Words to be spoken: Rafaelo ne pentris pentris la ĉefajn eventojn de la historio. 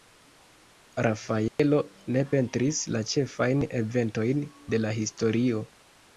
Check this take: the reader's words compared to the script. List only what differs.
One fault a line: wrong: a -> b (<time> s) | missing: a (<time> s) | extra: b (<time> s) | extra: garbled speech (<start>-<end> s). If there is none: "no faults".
missing: pentris (2.8 s)